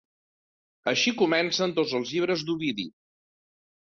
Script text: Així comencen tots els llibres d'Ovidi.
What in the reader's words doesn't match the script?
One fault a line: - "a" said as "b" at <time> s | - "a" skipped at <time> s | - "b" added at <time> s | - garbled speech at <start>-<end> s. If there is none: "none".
none